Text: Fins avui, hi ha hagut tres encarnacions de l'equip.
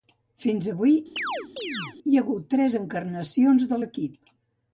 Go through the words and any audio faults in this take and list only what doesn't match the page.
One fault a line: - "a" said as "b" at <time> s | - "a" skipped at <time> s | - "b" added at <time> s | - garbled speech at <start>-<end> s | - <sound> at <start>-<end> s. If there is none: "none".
- chirp at 1.2-2.0 s